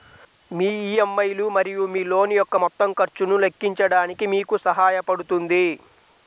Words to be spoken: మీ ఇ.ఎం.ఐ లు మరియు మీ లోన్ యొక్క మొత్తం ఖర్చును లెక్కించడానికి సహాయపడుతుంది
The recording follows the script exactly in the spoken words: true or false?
false